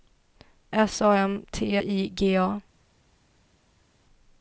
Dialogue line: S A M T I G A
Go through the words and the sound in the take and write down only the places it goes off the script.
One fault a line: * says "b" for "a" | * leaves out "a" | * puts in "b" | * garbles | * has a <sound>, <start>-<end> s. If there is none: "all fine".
all fine